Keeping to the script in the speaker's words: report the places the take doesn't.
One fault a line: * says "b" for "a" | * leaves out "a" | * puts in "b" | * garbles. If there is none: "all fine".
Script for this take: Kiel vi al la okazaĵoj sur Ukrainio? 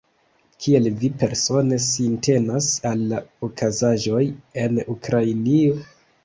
* puts in "persone sintenas"
* says "en" for "sur"